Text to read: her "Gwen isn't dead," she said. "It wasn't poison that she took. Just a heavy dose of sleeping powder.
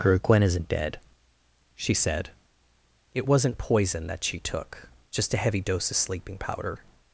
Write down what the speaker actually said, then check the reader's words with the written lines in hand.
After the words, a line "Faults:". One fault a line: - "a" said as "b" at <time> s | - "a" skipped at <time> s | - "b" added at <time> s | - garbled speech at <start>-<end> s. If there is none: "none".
her "Gwen isn't dead," she said. "It wasn't poison that she took. Just a heavy dose of sleeping powder.
Faults:
none